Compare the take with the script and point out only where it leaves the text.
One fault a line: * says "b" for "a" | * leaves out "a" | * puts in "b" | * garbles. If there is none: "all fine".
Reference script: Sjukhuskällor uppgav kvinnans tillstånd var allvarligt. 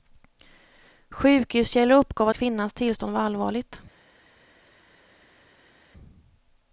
all fine